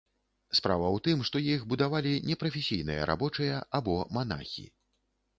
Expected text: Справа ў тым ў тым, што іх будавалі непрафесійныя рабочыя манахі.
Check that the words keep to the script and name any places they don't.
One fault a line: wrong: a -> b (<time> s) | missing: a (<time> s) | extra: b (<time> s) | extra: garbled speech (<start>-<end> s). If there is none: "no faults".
missing: ў тым (1.2 s)
extra: або (3.8 s)